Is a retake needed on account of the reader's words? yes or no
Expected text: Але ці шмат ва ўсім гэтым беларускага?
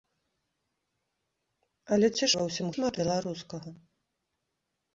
yes